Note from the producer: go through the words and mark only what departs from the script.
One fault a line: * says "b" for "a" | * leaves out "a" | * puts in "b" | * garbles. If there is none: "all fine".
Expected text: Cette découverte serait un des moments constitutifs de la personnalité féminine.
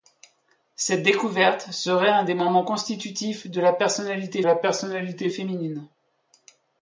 * puts in "la personnalité"